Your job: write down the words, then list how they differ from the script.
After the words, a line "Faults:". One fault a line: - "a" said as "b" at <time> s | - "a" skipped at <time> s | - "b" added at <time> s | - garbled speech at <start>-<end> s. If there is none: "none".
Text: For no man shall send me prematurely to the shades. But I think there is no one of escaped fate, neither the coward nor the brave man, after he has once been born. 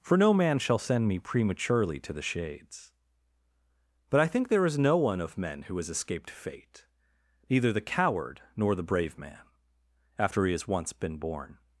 For no man shall send me prematurely to the shades. But I think there is no one of men who has escaped fate, neither the coward nor the brave man, after he has once been born.
Faults:
- "men who has" added at 5.4 s